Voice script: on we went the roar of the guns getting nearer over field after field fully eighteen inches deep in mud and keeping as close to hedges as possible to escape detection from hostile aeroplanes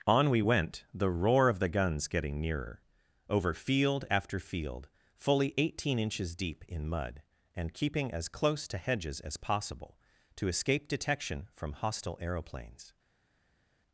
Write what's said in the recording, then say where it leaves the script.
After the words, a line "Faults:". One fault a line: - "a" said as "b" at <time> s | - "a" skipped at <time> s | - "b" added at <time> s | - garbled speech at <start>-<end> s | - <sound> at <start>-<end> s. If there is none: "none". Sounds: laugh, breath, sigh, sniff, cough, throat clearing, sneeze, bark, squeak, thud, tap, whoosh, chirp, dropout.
on we went the roar of the guns getting nearer over field after field fully eighteen inches deep in mud and keeping as close to hedges as possible to escape detection from hostile aeroplanes
Faults:
none